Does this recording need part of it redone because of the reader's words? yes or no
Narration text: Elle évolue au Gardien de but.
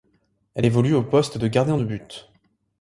yes